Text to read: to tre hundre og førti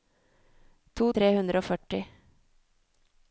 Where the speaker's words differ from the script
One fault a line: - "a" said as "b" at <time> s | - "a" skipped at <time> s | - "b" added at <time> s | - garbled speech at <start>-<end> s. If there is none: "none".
none